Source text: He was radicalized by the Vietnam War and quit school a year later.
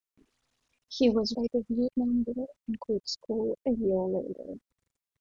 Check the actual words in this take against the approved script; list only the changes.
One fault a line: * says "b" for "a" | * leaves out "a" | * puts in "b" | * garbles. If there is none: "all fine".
* leaves out "radicalized"